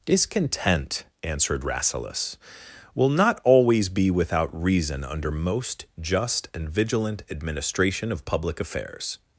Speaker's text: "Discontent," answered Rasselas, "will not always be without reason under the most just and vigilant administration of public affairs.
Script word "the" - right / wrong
wrong